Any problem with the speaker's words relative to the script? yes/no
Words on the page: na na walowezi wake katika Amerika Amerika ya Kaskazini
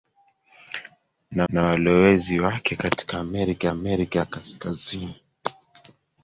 no